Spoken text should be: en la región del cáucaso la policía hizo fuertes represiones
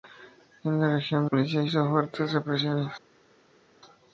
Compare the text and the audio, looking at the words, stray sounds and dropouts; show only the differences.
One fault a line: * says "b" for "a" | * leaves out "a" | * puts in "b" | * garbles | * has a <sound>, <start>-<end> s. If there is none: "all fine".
* leaves out "del cáucaso la"